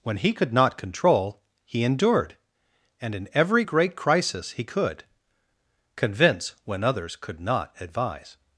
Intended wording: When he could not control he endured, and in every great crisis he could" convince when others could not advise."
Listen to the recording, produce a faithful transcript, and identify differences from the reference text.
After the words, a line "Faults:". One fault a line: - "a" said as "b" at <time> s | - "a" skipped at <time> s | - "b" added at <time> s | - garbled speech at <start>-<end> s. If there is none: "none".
When he could not control he endured, and in every great crisis he could" convince when others could not advise."
Faults:
none